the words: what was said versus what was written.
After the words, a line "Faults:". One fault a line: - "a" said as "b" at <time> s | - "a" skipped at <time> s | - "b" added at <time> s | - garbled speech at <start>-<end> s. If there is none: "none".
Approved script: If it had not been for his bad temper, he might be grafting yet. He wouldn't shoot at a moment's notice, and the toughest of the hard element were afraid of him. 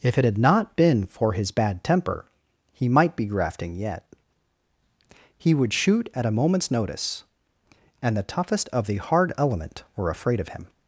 If it had not been for his bad temper, he might be grafting yet. He would shoot at a moment's notice, and the toughest of the hard element were afraid of him.
Faults:
- "wouldn't" said as "would" at 5.5 s